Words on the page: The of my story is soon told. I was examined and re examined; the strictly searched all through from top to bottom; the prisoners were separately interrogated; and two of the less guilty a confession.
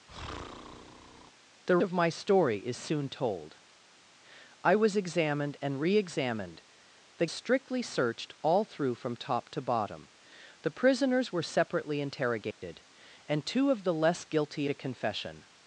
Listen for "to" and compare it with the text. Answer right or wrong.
right